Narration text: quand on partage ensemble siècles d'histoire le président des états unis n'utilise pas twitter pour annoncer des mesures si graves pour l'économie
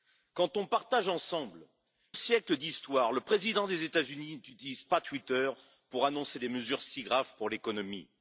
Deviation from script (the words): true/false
false